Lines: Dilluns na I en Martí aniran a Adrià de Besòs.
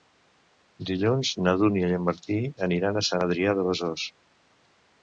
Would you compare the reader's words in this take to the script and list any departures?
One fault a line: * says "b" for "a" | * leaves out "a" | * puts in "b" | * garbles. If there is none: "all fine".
* puts in "Dúnia"
* puts in "Sant"